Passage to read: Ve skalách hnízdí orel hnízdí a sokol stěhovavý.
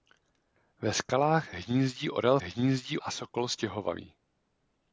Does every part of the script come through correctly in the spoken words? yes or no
yes